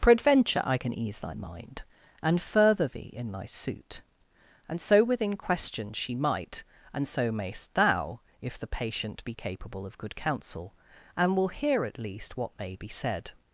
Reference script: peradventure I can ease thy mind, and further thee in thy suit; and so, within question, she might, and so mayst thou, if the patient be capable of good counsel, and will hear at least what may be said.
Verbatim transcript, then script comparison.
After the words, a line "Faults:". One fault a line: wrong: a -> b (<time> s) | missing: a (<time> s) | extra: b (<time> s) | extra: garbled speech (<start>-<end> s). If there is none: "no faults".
peradventure I can ease thy mind, and further thee in thy suit; and so, within question, she might, and so mayst thou, if the patient be capable of good counsel, and will hear at least what may be said.
Faults:
no faults